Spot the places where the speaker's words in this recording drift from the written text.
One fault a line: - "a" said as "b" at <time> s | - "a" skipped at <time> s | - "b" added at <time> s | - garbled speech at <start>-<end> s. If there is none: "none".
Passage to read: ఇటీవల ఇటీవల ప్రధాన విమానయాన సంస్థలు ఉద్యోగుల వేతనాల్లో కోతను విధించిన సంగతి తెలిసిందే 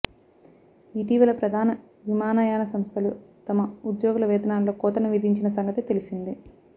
- "ఇటీవల" skipped at 1.3 s
- "తమ" added at 3.5 s